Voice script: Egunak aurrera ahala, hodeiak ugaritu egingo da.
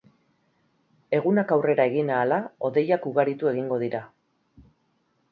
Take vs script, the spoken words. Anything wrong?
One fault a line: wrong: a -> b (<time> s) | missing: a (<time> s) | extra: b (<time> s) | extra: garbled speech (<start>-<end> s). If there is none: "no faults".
extra: egin (1.9 s)
wrong: da -> dira (3.9 s)